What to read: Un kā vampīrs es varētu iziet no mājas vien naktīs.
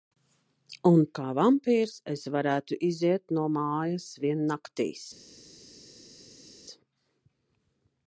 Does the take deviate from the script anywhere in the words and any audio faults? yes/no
no